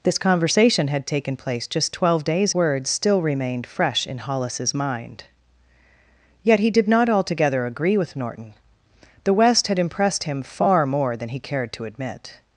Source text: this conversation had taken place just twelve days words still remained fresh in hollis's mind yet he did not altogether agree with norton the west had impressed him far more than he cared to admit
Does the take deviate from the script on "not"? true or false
false